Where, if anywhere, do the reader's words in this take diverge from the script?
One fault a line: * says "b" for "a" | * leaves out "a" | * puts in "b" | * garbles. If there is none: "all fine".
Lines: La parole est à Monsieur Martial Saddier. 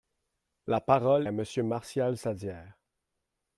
* leaves out "est"